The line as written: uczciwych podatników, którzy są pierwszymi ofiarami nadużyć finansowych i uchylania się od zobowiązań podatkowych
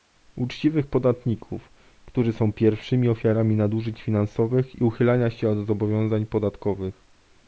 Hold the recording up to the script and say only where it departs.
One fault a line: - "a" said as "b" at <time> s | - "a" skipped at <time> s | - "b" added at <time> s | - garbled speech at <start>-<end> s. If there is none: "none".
none